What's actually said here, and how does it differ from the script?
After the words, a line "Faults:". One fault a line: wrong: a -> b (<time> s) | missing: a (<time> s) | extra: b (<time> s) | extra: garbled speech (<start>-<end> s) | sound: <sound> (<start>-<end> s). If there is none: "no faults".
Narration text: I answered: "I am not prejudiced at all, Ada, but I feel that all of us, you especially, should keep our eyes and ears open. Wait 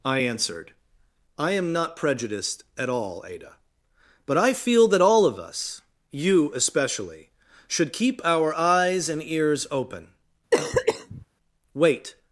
I answered: "I am not prejudiced at all, Ada, but I feel that all of us, you especially, should keep our eyes and ears open. Wait
Faults:
sound: cough (10.5-11.3 s)